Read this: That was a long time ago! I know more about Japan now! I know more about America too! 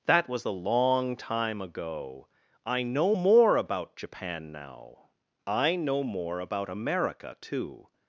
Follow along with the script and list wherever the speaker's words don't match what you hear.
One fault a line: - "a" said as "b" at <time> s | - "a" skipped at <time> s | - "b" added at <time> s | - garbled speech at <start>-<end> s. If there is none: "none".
- "a" said as "the" at 0.4 s